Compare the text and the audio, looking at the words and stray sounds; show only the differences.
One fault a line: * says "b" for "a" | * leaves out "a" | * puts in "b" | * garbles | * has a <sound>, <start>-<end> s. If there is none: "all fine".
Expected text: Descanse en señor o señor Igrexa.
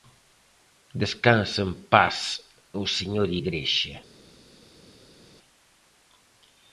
* says "paz" for "señor"